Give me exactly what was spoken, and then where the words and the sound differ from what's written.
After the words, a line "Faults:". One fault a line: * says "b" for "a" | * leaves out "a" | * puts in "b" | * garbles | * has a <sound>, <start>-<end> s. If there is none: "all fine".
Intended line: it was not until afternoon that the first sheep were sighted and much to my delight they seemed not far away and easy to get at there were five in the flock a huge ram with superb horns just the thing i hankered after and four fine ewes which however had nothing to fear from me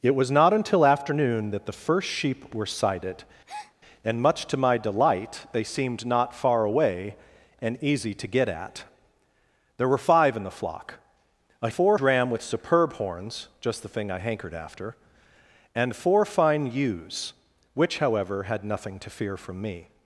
it was not until afternoon that the first sheep were sighted and much to my delight they seemed not far away and easy to get at there were five in the flock a four ram with superb horns just the thing i hankered after and four fine ewes which however had nothing to fear from me
Faults:
* has a breath, 3.5-3.7 s
* says "four" for "huge"